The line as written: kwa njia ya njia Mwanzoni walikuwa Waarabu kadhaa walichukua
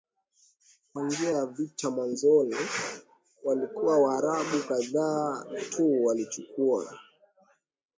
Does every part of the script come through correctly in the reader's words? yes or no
no